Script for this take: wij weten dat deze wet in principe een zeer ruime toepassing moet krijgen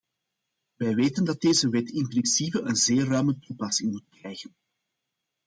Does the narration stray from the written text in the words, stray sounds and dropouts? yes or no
no